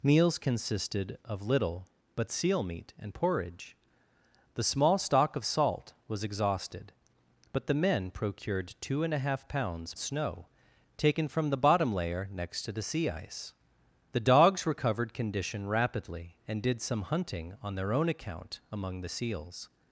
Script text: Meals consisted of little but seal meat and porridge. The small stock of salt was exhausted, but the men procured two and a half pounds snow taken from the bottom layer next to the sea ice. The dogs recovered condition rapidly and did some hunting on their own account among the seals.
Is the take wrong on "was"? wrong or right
right